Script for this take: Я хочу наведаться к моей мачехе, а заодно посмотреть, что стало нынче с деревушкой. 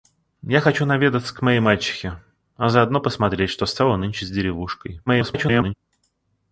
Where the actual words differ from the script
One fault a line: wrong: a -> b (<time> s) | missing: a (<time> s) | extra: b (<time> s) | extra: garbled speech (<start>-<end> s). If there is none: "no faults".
extra: garbled speech (5.1-5.7 s)